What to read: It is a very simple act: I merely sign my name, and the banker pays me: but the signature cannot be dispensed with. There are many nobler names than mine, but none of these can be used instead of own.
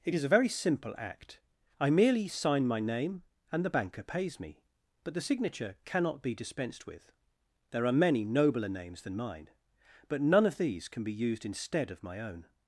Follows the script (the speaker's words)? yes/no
no